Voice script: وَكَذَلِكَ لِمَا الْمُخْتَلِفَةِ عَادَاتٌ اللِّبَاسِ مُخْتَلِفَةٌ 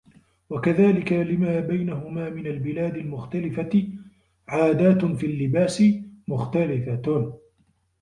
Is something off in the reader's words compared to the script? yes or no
yes